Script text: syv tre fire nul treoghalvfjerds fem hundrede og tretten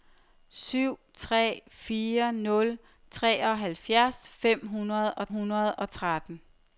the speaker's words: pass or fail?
fail